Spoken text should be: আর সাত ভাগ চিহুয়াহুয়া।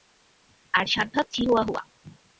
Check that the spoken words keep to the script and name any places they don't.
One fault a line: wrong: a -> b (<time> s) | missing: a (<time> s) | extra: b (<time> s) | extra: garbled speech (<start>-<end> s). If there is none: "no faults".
no faults